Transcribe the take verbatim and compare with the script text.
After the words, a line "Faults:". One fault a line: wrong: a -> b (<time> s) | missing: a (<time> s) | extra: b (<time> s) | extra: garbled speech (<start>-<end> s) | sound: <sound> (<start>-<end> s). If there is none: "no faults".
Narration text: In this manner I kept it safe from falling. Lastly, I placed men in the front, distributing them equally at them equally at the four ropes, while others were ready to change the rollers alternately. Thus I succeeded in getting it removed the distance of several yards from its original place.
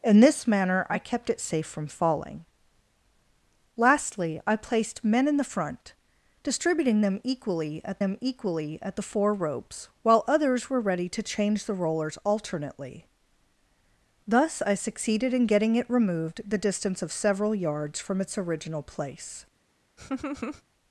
In this manner I kept it safe from falling. Lastly, I placed men in the front, distributing them equally at them equally at the four ropes, while others were ready to change the rollers alternately. Thus I succeeded in getting it removed the distance of several yards from its original place.
Faults:
sound: laugh (20.0-20.6 s)